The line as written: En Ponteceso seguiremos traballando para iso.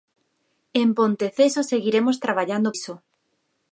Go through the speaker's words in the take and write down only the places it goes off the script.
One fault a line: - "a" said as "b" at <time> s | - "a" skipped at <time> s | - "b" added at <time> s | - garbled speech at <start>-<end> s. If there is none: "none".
- "para" skipped at 2.7 s